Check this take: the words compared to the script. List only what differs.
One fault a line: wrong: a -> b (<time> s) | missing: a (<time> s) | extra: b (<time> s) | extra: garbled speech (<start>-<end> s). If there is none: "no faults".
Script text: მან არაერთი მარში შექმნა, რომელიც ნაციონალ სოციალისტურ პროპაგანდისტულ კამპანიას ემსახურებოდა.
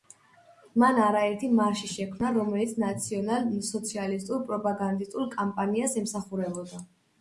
no faults